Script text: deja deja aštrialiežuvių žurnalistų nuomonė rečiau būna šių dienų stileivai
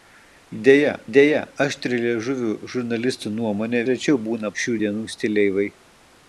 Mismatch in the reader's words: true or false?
false